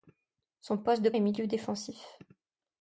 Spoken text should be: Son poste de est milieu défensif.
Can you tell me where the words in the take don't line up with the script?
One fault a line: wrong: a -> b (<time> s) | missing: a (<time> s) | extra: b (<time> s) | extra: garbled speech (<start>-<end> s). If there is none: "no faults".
no faults